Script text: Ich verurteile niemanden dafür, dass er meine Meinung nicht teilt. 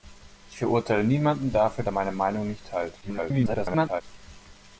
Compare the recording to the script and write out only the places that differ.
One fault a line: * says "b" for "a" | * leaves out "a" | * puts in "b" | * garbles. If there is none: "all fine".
* leaves out "dass"
* garbles